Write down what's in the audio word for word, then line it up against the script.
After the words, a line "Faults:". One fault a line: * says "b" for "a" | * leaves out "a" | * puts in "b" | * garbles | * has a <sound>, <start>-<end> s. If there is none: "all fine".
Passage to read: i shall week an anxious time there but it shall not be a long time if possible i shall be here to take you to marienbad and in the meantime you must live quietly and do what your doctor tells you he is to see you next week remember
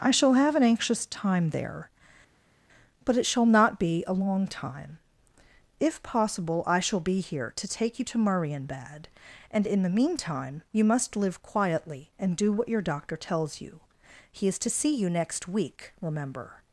i shall have an anxious time there but it shall not be a long time if possible i shall be here to take you to marienbad and in the meantime you must live quietly and do what your doctor tells you he is to see you next week remember
Faults:
* says "have" for "week"